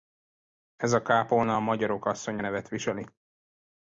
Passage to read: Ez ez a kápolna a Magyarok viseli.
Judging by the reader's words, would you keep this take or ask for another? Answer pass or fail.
fail